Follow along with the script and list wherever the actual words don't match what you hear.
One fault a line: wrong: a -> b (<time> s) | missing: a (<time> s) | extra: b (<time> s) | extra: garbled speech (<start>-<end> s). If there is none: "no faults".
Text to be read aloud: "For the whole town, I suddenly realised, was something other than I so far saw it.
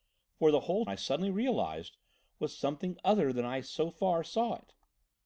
missing: town (0.9 s)